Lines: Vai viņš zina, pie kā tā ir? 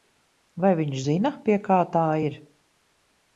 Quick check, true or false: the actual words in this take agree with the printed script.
true